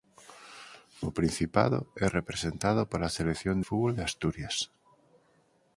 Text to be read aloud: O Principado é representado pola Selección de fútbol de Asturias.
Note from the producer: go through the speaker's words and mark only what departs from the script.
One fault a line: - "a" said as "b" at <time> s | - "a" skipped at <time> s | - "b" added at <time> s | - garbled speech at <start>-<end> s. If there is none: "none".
- "de" skipped at 3.6 s